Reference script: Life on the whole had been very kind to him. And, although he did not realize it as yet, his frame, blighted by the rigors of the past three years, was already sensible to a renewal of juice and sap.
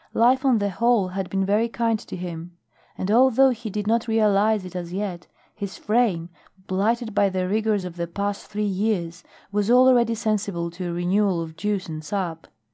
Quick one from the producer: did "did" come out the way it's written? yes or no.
yes